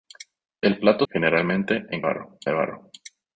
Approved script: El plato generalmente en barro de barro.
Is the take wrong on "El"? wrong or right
right